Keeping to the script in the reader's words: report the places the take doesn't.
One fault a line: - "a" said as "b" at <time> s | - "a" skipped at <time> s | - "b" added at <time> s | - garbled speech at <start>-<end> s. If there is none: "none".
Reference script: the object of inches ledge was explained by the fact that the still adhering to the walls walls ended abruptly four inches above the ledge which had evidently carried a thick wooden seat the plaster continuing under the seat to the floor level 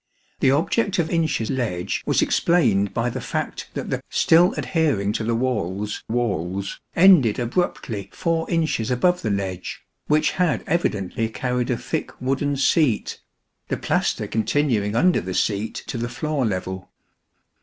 none